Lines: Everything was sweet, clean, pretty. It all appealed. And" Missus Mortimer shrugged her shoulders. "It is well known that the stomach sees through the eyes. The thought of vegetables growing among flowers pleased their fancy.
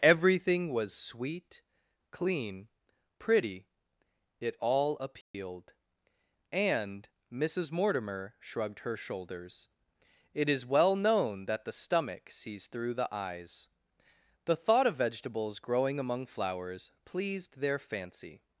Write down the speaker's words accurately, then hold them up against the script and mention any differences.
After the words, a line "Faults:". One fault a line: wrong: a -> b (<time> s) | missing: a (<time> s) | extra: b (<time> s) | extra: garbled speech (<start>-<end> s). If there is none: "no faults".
Everything was sweet, clean, pretty. It all appealed. And" Missus Mortimer shrugged her shoulders. "It is well known that the stomach sees through the eyes. The thought of vegetables growing among flowers pleased their fancy.
Faults:
no faults